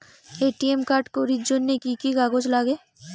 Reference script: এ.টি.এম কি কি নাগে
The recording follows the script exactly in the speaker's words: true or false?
false